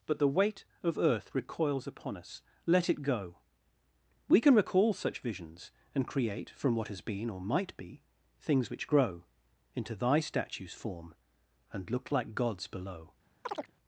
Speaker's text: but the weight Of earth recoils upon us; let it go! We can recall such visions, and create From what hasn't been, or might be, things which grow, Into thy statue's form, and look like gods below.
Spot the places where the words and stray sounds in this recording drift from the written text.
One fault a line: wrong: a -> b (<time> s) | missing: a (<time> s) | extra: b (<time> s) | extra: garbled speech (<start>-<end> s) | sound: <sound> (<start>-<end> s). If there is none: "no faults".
wrong: hasn't -> has (6.9 s)
sound: chirp (13.4-13.7 s)